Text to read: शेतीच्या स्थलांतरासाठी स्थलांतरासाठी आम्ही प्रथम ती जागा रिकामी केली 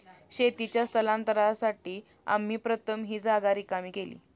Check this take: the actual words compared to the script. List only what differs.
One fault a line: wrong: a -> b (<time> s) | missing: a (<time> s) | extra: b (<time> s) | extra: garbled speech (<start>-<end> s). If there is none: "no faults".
missing: स्थलांतरासाठी (2.0 s)
wrong: ती -> ही (3.0 s)